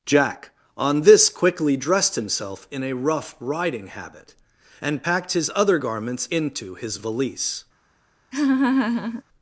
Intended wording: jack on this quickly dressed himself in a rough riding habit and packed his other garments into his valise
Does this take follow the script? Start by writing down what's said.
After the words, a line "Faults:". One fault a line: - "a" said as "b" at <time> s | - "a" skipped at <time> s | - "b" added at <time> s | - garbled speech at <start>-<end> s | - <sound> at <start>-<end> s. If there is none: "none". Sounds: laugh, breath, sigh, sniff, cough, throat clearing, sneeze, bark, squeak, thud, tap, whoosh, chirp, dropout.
jack on this quickly dressed himself in a rough riding habit and packed his other garments into his valise
Faults:
- laugh at 8.3-9.2 s